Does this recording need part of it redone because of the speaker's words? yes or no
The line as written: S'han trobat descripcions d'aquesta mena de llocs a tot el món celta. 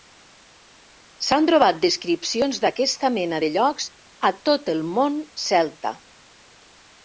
no